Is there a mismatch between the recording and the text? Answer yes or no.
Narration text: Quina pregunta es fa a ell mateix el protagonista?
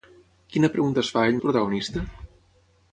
yes